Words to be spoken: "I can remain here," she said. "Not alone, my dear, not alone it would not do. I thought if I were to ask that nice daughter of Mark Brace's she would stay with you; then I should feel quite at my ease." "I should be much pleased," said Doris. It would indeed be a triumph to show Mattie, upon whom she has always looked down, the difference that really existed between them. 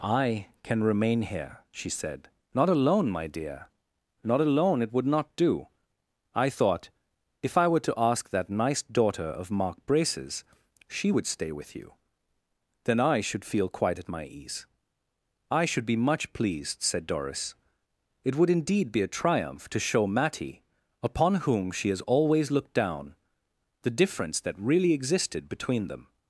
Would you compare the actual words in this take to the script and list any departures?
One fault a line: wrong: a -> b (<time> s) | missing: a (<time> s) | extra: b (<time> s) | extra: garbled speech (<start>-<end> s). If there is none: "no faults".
no faults